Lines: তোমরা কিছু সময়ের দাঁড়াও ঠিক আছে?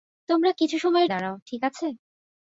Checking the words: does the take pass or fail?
pass